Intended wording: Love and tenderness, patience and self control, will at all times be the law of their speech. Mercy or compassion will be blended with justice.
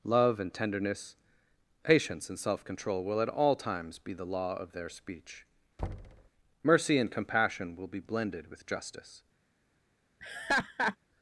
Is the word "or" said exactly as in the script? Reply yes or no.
no